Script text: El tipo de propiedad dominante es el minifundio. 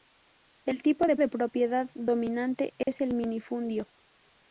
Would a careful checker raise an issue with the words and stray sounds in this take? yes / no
yes